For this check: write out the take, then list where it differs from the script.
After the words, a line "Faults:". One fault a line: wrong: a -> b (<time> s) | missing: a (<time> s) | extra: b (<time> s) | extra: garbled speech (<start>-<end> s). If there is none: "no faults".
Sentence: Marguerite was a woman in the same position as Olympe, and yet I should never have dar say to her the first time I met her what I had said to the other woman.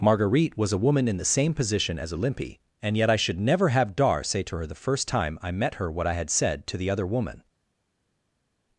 Marguerite was a woman in the same position as Olympe, and yet I should never have dar say to her the first time I met her what I had said to the other woman.
Faults:
no faults